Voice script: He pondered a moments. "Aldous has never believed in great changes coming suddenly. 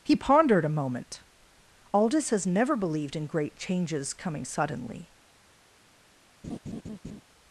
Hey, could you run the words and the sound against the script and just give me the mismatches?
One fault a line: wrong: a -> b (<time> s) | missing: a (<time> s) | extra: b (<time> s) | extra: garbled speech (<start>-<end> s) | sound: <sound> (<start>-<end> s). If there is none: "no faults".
wrong: moments -> moment (0.8 s)
sound: laugh (6.4-7.2 s)